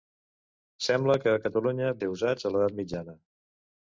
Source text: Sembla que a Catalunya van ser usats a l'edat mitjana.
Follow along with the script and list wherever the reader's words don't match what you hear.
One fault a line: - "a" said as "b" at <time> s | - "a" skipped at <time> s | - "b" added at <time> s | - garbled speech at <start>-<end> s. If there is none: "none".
- "van" skipped at 1.9 s